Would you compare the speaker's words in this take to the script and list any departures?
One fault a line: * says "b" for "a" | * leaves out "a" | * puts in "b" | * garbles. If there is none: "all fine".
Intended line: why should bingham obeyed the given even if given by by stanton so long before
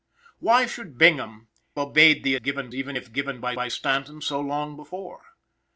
all fine